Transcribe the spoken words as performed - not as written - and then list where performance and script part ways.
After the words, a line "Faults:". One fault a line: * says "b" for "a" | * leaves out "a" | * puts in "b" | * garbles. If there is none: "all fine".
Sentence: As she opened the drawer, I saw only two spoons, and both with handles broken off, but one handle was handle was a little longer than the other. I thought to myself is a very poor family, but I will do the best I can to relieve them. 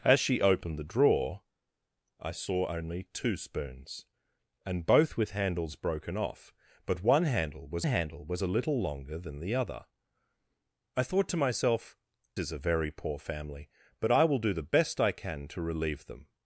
As she opened the drawer, I saw only two spoons, and both with handles broken off, but one handle was handle was a little longer than the other. I thought to myself is a very poor family, but I will do the best I can to relieve them.
Faults:
all fine